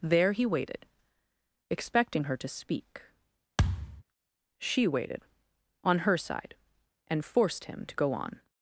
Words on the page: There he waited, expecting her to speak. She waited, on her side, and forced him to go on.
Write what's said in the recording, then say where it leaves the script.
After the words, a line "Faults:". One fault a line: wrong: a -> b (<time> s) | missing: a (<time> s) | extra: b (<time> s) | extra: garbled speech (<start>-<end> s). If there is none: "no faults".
There he waited, expecting her to speak. She waited, on her side, and forced him to go on.
Faults:
no faults